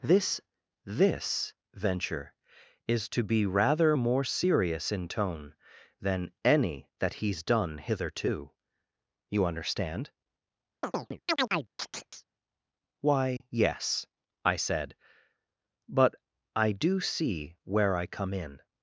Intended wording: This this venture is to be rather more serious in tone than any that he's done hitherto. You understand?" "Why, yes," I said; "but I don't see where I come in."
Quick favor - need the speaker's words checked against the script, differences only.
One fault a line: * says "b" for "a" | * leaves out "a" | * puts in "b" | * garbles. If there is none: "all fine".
* says "do" for "don't"